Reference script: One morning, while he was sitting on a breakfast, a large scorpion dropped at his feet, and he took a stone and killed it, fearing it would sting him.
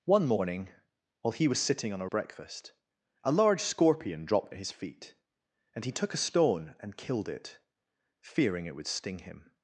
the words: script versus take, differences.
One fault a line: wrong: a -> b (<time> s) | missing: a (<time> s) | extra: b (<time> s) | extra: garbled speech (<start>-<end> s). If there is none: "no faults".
no faults